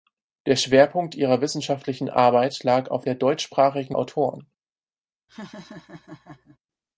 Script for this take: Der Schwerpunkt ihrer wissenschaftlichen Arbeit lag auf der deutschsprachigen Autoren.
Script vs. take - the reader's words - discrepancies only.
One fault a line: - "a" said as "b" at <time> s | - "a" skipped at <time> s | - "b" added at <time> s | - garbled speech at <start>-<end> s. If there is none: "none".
none